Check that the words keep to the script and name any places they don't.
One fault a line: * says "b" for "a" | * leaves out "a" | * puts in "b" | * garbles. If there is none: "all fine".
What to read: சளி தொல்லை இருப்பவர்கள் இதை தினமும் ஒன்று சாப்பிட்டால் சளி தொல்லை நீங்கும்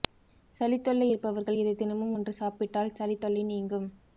all fine